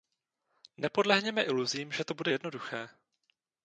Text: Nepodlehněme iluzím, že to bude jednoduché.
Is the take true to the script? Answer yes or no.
yes